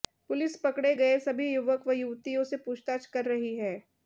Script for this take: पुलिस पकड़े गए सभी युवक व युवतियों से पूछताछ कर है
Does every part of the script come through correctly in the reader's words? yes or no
no